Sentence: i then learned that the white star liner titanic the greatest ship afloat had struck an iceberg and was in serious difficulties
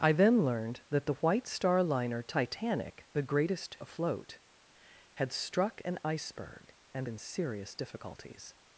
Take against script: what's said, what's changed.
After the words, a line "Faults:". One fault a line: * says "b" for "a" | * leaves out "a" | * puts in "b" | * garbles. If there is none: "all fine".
i then learned that the white star liner titanic the greatest afloat had struck an iceberg and in serious difficulties
Faults:
* leaves out "ship"
* leaves out "was"